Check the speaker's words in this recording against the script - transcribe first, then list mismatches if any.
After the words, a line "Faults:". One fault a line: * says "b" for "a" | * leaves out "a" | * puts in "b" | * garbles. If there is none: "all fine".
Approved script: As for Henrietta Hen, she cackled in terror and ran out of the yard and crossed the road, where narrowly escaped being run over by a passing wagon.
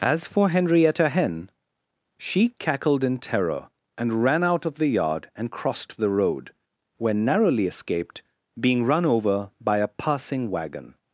As for Henrietta Hen, she cackled in terror and ran out of the yard and crossed the road, where narrowly escaped being run over by a passing wagon.
Faults:
all fine